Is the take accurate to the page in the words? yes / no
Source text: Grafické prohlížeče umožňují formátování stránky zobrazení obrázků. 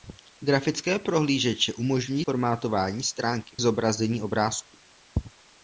yes